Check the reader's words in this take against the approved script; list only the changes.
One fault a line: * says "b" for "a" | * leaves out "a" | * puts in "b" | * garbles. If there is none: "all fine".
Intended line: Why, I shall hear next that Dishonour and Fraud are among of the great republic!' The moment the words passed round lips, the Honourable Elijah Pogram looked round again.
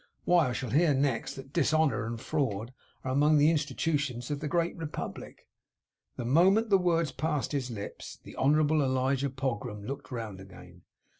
* puts in "the Institutions"
* says "his" for "round"